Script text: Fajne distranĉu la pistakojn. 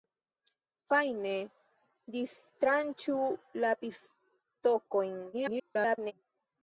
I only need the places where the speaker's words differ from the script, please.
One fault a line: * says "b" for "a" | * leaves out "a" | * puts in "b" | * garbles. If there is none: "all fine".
* garbles